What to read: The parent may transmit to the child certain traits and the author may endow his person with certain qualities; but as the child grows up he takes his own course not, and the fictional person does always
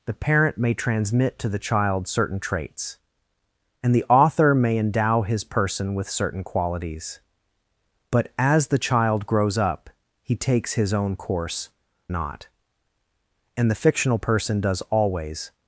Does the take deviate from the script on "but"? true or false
false